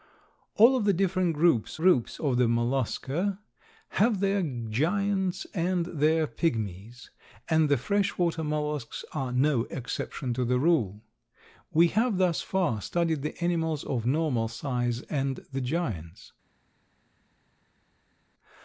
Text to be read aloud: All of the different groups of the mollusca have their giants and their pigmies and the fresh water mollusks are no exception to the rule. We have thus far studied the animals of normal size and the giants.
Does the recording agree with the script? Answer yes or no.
no